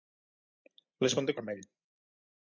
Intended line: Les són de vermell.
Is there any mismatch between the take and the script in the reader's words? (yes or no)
no